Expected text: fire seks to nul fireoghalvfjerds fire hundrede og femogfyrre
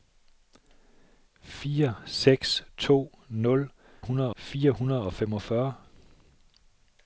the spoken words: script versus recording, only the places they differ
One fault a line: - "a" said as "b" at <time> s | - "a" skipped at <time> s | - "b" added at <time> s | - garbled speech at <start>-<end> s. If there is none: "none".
- "fireoghalvfjerds" said as "hundrede" at 4.0 s